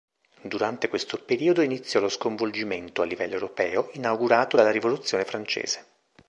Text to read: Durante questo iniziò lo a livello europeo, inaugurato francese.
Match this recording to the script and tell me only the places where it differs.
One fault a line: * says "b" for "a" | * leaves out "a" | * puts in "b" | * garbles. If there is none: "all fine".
* puts in "periodo"
* puts in "sconvolgimento"
* puts in "dalla rivoluzione"